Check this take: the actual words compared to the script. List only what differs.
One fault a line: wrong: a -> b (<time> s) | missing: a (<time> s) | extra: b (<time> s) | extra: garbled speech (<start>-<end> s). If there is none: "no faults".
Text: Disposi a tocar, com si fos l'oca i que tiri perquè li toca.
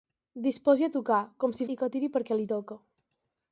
missing: fos l'oca (1.7 s)